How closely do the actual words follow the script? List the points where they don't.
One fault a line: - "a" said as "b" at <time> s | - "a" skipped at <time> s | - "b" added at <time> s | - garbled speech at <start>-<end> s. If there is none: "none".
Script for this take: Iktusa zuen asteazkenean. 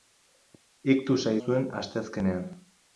none